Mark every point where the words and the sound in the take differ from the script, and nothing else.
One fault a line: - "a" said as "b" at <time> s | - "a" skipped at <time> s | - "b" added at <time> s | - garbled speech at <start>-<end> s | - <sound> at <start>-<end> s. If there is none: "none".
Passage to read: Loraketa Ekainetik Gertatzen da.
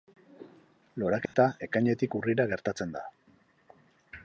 - dropout at 1.3-1.3 s
- "Urrira" added at 2.2 s